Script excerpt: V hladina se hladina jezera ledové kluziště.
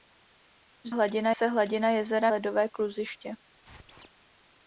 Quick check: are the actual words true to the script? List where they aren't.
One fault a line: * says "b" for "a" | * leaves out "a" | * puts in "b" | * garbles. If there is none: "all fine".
all fine